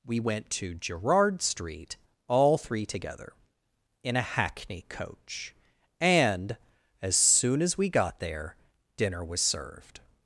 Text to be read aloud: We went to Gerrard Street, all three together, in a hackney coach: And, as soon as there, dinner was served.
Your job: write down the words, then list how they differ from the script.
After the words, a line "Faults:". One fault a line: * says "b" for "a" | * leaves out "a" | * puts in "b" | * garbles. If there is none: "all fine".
We went to Gerrard Street, all three together, in a hackney coach: And, as soon as we got there, dinner was served.
Faults:
* puts in "we got"